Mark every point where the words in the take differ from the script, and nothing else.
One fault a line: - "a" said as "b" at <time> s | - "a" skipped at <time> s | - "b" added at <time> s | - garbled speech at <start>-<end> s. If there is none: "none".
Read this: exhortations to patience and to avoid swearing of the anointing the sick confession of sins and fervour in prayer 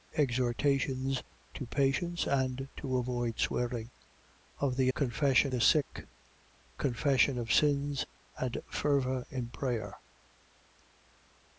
- "anointing" said as "confession" at 5.0 s